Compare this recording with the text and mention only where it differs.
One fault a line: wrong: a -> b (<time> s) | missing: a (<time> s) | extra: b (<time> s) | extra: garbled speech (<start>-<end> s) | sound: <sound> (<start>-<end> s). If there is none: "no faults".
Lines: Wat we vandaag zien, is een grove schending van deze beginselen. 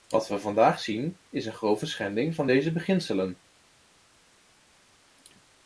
no faults